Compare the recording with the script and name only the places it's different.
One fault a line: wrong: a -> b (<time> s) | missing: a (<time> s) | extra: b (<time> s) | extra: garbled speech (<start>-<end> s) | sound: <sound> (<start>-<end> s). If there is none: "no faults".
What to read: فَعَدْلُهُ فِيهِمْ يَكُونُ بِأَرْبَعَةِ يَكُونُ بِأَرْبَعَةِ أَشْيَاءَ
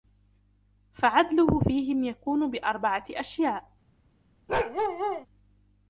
missing: يَكُونُ بِأَرْبَعَةِ (3.0 s)
sound: bark (4.5-5.3 s)